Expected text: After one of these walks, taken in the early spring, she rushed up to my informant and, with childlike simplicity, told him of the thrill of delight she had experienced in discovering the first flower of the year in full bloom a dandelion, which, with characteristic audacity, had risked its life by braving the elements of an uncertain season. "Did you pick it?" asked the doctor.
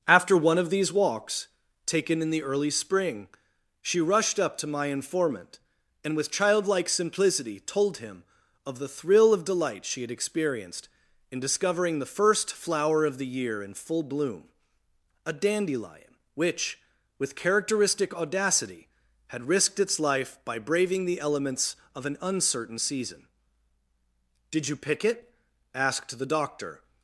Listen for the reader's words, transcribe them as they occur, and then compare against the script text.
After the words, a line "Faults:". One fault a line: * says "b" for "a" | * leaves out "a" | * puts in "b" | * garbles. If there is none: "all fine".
After one of these walks, taken in the early spring, she rushed up to my informant and, with childlike simplicity, told him of the thrill of delight she had experienced in discovering the first flower of the year in full bloom a dandelion, which, with characteristic audacity, had risked its life by braving the elements of an uncertain season. "Did you pick it?" asked the doctor.
Faults:
all fine